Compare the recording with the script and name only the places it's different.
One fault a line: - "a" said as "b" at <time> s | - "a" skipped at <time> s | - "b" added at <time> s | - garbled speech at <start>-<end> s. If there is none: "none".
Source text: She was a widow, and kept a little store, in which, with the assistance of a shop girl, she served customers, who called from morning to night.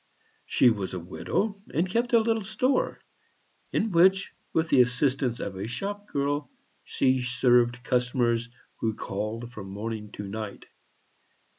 none